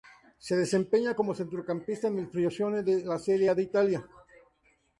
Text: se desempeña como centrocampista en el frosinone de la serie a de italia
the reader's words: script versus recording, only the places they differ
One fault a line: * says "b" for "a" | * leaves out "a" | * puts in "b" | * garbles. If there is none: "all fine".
all fine